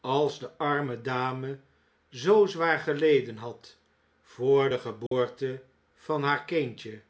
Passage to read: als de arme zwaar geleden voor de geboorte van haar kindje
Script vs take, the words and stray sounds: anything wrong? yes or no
yes